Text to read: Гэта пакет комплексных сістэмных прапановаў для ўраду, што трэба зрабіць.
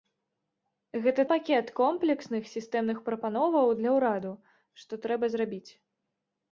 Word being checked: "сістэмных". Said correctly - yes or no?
yes